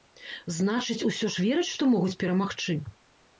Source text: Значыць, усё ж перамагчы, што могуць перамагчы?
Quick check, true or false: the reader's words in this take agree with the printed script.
false